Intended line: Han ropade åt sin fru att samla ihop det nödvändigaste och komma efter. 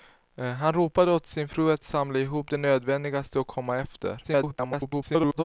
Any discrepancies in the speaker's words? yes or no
yes